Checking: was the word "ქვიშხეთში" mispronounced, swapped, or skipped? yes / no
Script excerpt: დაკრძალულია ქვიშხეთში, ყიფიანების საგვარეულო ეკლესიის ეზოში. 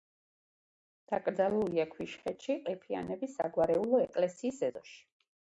no